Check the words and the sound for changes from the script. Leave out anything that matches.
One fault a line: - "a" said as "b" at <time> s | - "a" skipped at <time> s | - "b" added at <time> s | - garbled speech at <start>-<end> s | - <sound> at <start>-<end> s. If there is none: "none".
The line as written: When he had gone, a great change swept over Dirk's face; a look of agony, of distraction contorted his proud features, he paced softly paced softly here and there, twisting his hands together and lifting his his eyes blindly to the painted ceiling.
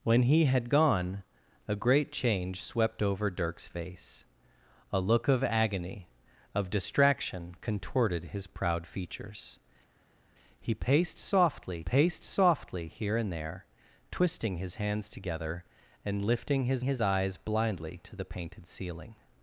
none